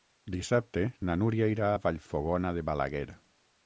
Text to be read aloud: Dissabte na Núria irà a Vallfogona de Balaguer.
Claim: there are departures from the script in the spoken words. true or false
false